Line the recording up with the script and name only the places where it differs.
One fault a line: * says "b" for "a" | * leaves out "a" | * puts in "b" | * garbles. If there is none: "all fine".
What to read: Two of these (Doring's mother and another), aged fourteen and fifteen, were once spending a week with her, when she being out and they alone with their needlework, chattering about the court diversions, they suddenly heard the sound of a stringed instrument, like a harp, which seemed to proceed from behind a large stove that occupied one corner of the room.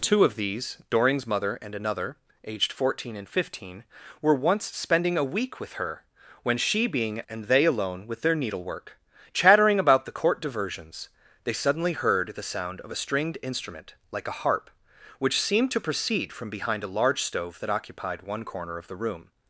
* leaves out "out"